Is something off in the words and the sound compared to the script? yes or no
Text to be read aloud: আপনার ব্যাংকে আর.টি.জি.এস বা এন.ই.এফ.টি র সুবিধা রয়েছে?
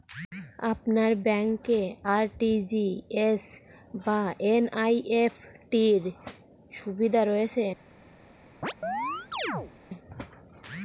yes